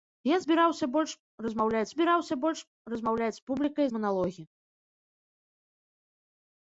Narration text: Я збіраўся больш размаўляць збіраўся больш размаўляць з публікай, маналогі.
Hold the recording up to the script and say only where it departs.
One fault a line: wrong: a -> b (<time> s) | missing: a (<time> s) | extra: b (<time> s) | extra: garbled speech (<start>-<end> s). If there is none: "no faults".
no faults